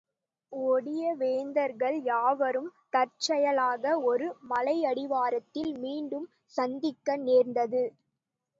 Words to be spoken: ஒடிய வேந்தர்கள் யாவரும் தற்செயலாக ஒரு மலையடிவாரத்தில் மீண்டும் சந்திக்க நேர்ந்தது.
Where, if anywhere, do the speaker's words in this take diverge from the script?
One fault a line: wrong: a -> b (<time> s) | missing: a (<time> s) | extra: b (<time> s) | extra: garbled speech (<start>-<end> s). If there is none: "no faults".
no faults